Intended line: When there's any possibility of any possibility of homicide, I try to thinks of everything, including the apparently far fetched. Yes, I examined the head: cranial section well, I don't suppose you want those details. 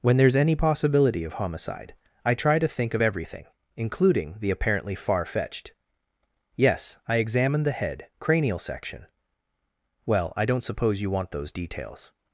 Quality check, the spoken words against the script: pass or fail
fail